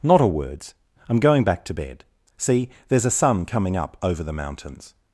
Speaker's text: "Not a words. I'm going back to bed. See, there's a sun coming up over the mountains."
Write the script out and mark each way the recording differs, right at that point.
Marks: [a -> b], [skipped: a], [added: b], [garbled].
"Not a words. I'm going back to bed. See, there's a sun coming up over the mountains."